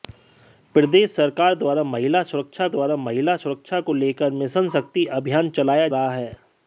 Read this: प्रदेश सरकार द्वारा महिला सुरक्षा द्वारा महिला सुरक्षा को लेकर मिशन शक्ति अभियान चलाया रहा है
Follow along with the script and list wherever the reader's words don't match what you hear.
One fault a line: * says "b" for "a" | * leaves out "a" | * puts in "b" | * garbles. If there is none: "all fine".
all fine